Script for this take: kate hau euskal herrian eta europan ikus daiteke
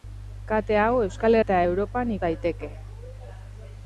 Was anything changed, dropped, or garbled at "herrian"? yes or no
yes